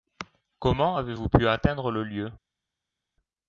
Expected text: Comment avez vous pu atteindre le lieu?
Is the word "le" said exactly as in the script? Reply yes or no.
yes